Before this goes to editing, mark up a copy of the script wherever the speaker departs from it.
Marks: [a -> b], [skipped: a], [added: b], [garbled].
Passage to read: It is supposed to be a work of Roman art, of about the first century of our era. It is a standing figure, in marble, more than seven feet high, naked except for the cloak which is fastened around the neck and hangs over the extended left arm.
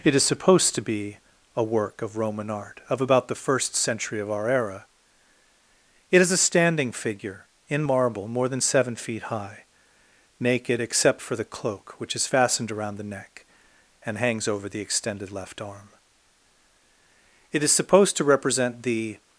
It is supposed to be a work of Roman art, of about the first century of our era. It is a standing figure, in marble, more than seven feet high, naked except for the cloak which is fastened around the neck and hangs over the extended left arm. [added: It is supposed to represent the]